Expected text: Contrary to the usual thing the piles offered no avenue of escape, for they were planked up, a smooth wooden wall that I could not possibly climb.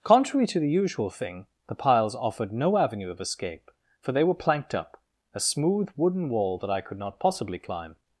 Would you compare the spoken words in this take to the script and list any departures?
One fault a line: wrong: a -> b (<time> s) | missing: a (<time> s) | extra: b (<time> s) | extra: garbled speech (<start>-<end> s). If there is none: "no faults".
no faults